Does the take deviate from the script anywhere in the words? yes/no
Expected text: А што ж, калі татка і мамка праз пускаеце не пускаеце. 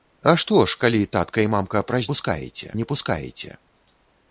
no